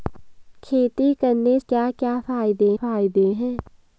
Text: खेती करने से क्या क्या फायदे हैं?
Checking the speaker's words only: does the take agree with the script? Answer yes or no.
no